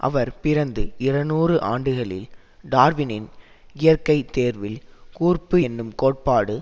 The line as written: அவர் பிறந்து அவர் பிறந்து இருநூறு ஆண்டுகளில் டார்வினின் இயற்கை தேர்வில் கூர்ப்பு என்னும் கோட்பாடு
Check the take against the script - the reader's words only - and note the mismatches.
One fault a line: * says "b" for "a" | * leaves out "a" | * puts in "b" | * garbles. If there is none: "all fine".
* leaves out "அவர் பிறந்து"